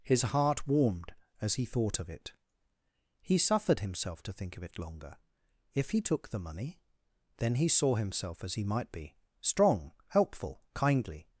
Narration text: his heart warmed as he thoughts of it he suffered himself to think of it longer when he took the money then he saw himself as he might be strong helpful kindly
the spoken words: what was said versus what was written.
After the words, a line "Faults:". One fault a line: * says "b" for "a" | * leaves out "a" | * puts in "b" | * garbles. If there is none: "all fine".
his heart warmed as he thought of it he suffered himself to think of it longer if he took the money then he saw himself as he might be strong helpful kindly
Faults:
* says "thought" for "thoughts"
* says "if" for "when"